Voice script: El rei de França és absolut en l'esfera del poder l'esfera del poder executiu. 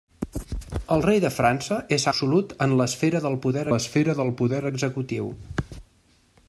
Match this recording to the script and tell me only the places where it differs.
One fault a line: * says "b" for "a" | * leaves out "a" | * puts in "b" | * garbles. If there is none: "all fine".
all fine